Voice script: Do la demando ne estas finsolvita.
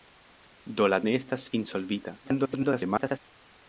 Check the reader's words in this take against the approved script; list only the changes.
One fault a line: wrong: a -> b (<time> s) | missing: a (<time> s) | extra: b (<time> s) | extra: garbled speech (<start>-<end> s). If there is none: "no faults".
missing: demando (1.0 s)
extra: garbled speech (2.2-3.2 s)